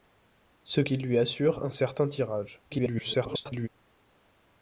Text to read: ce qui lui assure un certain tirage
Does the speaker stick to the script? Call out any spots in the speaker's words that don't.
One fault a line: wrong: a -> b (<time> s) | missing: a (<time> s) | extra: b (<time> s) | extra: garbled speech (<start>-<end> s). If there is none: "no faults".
extra: garbled speech (2.7-3.7 s)